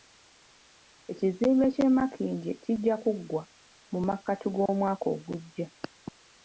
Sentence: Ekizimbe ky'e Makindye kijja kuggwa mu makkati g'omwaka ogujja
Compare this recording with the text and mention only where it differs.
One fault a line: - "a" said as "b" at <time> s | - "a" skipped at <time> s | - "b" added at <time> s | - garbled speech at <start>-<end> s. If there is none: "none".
none